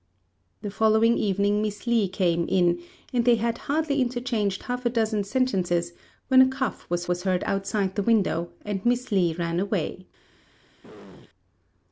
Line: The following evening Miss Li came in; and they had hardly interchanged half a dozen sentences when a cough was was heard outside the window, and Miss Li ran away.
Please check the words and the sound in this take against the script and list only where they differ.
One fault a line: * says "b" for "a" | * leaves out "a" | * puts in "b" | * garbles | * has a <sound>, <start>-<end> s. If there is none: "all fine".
* has a throat clearing, 10.8-11.3 s